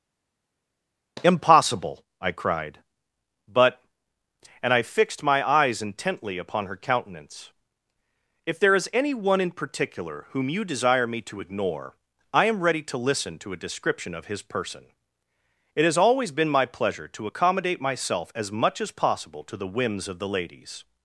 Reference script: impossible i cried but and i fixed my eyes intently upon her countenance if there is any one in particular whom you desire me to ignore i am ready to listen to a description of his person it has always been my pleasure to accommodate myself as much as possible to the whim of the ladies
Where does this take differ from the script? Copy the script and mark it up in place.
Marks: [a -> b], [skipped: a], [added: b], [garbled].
impossible i cried but and i fixed my eyes intently upon her countenance if there is any one in particular whom you desire me to ignore i am ready to listen to a description of his person it has always been my pleasure to accommodate myself as much as possible to the [whim -> whims] of the ladies